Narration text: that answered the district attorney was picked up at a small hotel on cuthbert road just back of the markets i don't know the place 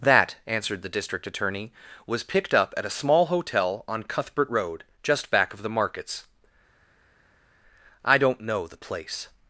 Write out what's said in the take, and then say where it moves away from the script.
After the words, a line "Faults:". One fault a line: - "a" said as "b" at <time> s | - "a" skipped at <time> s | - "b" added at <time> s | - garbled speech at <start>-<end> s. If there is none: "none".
that answered the district attorney was picked up at a small hotel on cuthbert road just back of the markets i don't know the place
Faults:
none